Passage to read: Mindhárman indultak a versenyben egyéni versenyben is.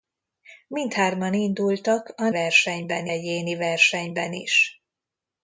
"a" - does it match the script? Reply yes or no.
yes